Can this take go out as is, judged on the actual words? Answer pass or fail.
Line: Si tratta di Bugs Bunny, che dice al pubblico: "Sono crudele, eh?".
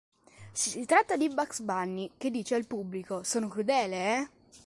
pass